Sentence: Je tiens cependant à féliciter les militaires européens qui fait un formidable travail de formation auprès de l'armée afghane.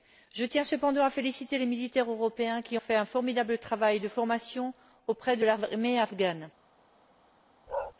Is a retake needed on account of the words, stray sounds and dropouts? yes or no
yes